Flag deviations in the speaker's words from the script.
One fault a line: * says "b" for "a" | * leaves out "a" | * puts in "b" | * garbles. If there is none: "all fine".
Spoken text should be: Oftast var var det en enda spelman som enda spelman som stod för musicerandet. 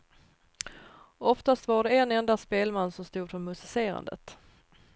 * leaves out "var"
* leaves out "enda spelman som"